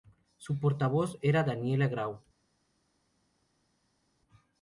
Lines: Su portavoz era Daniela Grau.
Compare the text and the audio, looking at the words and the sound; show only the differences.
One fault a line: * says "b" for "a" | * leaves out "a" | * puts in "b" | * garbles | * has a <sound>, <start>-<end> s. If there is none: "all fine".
all fine